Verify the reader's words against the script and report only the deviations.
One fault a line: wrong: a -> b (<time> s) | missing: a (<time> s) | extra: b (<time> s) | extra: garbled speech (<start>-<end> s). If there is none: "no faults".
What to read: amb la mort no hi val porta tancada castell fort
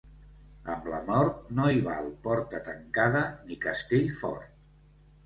extra: ni (3.5 s)